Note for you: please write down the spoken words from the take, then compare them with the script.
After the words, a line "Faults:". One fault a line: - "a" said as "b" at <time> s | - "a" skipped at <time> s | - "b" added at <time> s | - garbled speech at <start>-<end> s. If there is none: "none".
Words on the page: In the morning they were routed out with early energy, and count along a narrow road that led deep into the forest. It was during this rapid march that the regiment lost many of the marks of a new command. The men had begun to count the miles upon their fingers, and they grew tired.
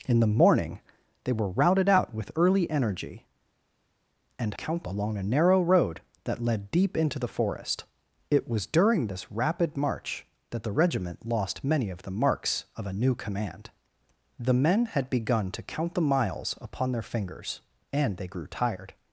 In the morning they were routed out with early energy, and count along a narrow road that led deep into the forest. It was during this rapid march that the regiment lost many of the marks of a new command. The men had begun to count the miles upon their fingers, and they grew tired.
Faults:
none